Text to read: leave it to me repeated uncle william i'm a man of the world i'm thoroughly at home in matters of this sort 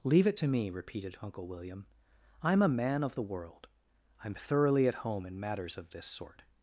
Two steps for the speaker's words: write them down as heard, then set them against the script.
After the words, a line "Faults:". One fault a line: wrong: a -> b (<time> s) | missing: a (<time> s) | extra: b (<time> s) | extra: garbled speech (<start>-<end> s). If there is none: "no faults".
leave it to me repeated uncle william i'm a man of the world i'm thoroughly at home in matters of this sort
Faults:
no faults